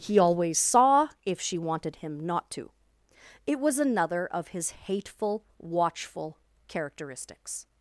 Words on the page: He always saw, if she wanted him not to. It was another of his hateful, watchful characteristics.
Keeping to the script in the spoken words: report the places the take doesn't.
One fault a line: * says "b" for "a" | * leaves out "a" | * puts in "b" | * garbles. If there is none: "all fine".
all fine